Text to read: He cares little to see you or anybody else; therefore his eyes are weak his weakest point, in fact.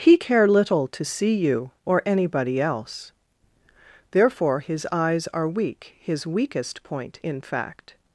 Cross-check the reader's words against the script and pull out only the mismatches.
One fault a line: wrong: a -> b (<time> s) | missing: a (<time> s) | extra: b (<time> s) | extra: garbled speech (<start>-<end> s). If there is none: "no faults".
wrong: cares -> care (0.1 s)